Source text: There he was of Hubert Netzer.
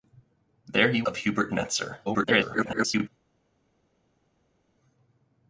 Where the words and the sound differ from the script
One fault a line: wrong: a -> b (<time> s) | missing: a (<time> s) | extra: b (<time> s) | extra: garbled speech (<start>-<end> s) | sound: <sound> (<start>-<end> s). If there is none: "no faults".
missing: was (1.0 s)
extra: garbled speech (2.1-3.1 s)